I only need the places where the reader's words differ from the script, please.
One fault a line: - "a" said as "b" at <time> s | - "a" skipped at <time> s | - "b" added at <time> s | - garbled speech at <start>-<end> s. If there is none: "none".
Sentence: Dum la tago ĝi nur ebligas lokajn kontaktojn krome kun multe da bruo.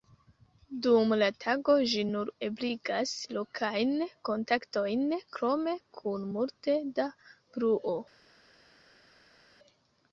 none